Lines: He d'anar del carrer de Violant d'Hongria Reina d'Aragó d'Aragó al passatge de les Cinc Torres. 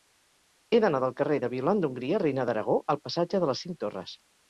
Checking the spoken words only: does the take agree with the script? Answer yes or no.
no